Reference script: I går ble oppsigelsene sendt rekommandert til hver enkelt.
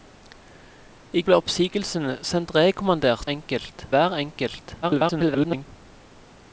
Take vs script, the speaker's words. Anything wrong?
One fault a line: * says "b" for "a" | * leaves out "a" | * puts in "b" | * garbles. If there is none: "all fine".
* leaves out "går"
* says "enkelt" for "til"
* garbles